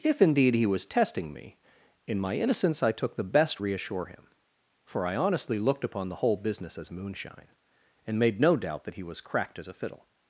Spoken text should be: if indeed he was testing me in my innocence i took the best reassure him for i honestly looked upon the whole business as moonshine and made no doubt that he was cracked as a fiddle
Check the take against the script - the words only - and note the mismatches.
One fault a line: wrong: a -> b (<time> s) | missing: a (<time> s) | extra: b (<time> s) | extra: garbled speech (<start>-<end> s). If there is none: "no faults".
no faults